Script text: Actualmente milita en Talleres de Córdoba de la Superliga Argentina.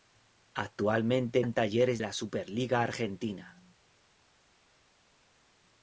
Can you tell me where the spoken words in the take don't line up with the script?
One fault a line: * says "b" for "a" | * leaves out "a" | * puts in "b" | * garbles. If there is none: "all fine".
* leaves out "milita"
* leaves out "de Córdoba de"